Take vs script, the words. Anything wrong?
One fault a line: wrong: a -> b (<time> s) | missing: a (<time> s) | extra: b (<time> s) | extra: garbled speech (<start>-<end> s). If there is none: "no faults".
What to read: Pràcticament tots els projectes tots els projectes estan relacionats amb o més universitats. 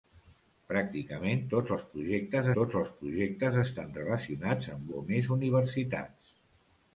no faults